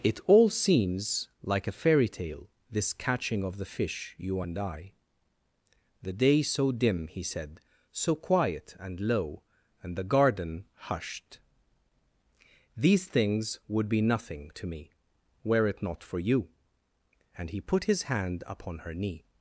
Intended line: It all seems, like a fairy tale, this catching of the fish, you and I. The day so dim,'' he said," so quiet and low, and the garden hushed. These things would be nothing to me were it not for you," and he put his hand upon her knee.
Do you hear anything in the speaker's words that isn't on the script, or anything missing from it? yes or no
no